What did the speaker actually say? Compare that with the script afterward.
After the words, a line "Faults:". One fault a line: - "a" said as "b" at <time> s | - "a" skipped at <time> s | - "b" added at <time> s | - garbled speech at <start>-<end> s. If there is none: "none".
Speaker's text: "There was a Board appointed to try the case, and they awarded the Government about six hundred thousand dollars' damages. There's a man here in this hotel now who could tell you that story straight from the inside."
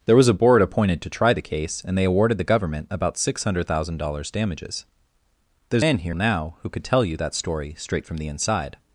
"There was a Board appointed to try the case, and they awarded the Government about six hundred thousand dollars' damages. There's man here now who could tell you that story straight from the inside."
Faults:
- "a" skipped at 5.8 s
- "in this hotel" skipped at 6.1 s